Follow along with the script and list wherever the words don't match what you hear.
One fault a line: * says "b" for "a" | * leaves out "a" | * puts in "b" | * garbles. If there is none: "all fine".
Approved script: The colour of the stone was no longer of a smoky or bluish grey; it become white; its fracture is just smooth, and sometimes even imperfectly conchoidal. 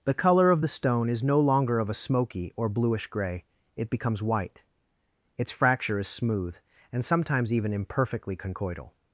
* says "is" for "was"
* says "becomes" for "become"
* leaves out "just"